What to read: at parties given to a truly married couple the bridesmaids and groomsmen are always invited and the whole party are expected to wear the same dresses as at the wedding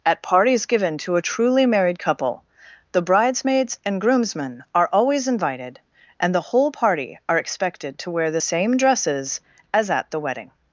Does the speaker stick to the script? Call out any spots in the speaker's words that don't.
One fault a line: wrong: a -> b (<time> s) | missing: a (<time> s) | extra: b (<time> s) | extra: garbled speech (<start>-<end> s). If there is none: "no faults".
no faults